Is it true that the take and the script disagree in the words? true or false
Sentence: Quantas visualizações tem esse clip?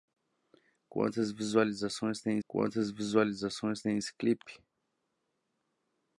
true